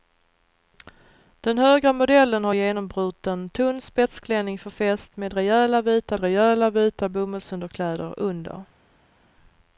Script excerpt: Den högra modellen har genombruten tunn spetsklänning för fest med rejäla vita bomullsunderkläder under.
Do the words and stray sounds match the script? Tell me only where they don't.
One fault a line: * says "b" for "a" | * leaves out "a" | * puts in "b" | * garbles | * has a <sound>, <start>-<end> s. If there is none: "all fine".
* puts in "rejäla vita"